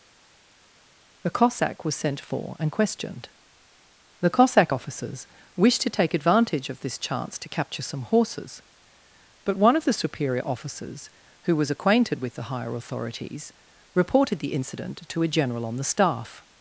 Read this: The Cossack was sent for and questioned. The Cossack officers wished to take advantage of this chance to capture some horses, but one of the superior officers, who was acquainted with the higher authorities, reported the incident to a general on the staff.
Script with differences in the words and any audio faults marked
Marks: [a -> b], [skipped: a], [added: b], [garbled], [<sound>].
The Cossack was sent for and questioned. The Cossack officers wished to take advantage of this chance to capture some horses, but one of the superior officers, who was acquainted with the higher authorities, reported the incident to a general on the staff.